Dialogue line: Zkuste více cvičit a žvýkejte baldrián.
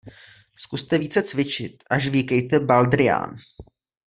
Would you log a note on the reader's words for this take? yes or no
no